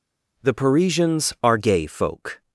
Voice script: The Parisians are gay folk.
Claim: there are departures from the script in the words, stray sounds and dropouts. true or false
false